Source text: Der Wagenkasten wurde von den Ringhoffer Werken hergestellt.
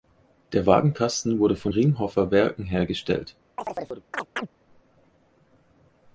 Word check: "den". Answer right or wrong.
wrong